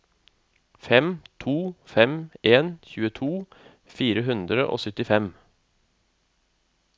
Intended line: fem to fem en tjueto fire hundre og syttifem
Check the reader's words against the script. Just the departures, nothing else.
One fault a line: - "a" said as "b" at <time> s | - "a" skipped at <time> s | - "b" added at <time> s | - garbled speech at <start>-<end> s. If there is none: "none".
none